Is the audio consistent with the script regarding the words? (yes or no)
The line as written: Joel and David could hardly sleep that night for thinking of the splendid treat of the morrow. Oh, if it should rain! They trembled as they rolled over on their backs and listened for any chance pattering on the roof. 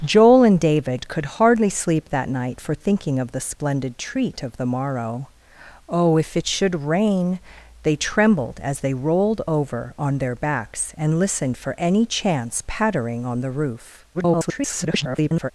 no